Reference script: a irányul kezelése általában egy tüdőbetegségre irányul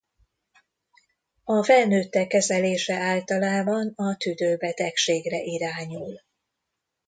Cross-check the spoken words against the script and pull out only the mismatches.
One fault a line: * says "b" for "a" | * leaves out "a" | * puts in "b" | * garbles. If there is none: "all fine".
* says "felnőttek" for "irányul"
* says "a" for "egy"